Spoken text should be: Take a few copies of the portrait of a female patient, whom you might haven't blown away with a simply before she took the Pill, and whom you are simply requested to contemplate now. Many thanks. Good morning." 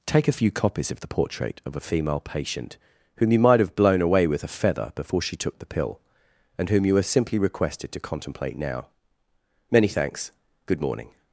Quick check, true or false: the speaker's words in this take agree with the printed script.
false